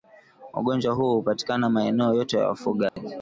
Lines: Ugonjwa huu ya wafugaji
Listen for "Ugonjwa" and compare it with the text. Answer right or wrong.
right